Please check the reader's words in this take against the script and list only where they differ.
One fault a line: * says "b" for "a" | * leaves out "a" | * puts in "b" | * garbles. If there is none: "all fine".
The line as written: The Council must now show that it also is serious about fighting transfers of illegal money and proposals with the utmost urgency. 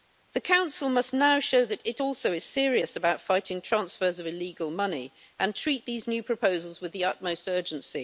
* puts in "treat these new"